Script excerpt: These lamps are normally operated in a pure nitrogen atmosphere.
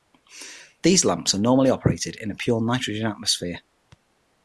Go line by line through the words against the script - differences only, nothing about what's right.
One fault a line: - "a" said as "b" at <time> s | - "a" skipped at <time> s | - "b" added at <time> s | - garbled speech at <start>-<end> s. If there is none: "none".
none